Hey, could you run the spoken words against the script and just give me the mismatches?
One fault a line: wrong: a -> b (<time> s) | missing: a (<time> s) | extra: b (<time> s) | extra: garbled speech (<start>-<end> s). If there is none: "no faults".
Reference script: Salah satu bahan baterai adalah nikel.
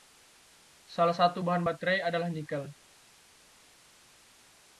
no faults